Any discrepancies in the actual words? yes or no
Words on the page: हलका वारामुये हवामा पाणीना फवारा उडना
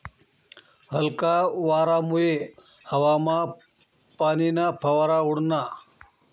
no